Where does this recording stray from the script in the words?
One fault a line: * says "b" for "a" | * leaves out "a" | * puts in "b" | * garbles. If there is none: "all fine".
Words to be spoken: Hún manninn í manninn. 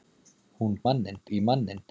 all fine